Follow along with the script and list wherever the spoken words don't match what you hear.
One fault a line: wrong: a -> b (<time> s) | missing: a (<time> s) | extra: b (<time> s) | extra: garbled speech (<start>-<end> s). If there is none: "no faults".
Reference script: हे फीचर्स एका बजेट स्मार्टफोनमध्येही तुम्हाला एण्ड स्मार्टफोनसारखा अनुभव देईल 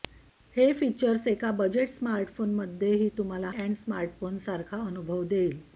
no faults